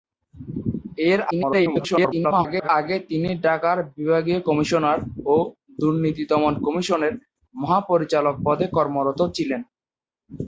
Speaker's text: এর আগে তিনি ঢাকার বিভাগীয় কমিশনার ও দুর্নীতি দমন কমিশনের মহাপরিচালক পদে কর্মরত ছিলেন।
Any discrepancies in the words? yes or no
yes